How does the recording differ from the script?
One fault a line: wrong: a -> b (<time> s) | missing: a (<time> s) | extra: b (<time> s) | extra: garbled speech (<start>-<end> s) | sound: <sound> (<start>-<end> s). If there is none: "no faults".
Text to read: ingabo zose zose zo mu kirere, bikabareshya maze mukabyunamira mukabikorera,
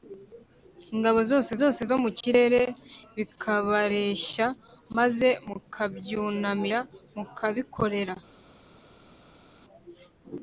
no faults